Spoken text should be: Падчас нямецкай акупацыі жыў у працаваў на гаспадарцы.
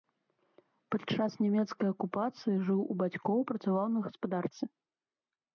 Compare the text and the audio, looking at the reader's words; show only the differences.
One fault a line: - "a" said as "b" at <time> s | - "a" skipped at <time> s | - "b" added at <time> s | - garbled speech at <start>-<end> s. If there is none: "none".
- "бацькоў" added at 3.0 s